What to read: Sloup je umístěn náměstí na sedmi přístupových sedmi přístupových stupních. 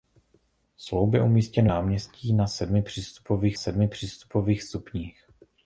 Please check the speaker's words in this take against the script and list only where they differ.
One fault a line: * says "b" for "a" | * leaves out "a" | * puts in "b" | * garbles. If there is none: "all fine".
all fine